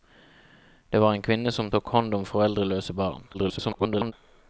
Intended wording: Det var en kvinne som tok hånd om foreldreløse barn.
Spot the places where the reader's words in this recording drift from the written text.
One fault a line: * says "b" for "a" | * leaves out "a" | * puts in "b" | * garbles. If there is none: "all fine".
* garbles